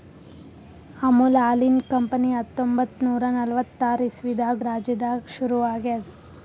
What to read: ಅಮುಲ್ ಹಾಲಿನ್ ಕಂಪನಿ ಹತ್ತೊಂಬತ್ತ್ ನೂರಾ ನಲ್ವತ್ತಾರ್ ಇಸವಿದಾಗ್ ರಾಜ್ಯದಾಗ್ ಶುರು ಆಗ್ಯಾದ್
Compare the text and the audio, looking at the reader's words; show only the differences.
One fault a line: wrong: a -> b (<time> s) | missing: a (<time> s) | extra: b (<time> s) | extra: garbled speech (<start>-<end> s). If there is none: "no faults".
no faults